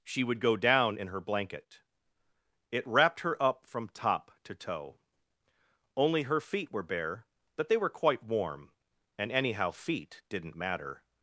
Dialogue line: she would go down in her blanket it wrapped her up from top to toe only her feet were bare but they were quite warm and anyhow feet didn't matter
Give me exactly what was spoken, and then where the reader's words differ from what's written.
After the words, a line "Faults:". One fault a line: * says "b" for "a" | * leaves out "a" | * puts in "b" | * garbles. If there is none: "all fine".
she would go down in her blanket it wrapped her up from top to toe only her feet were bare but they were quite warm and anyhow feet didn't matter
Faults:
all fine